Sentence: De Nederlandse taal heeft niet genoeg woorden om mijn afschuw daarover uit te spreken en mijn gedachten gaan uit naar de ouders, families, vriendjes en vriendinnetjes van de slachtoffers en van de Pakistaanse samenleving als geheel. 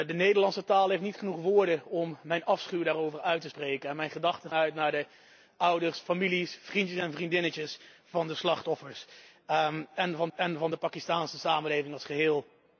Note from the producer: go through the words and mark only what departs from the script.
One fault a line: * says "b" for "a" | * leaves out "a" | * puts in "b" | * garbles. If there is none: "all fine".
* leaves out "gaan"
* puts in "en van"